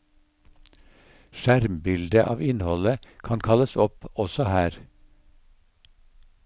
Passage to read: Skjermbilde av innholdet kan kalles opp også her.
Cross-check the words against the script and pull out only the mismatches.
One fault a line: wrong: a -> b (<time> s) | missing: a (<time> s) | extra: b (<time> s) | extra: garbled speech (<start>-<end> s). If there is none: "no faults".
no faults